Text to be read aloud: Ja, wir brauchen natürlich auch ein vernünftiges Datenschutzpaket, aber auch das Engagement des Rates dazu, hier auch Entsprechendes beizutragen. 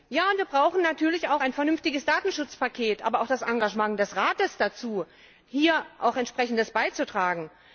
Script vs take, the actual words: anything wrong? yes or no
no